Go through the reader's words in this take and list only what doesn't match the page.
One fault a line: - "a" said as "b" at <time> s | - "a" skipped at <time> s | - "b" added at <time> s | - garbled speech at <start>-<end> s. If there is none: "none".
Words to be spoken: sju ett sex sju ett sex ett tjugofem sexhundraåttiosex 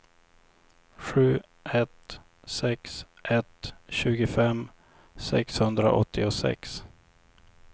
- "sju ett sex" skipped at 3.0 s